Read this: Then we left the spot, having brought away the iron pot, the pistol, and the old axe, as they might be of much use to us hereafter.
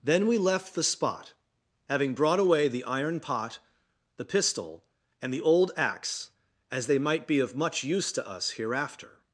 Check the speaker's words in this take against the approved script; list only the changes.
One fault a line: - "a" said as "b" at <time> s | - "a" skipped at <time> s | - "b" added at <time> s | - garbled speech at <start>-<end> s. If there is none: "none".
none